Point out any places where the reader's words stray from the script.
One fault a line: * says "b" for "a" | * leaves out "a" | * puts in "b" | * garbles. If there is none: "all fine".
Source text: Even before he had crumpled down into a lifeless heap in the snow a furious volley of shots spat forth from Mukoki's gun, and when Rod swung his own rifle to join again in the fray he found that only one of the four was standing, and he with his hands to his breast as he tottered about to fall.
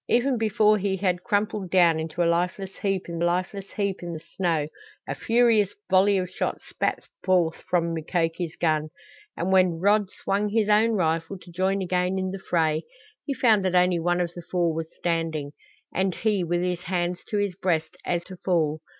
* puts in "lifeless heap in"
* leaves out "he tottered about"